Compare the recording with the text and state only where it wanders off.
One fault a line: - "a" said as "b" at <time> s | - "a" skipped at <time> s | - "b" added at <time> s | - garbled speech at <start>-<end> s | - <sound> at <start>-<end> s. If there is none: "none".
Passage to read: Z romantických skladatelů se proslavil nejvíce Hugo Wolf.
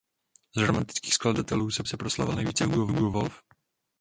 - "se" added at 1.9 s
- "Hugo" added at 2.9 s